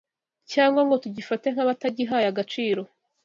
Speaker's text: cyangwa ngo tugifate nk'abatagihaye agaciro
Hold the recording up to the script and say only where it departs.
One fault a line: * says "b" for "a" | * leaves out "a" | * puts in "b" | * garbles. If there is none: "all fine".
all fine